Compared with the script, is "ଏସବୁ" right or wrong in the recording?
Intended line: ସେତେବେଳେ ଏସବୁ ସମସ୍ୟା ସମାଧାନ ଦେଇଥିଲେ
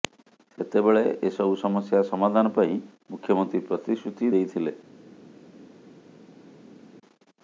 right